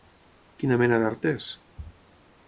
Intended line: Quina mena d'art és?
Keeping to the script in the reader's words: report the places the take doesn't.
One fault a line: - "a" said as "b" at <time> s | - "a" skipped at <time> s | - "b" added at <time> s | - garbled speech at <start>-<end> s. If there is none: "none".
none